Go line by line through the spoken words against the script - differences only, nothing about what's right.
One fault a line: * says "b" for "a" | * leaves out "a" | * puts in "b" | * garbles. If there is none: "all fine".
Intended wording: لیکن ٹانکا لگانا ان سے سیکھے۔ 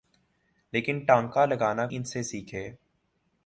all fine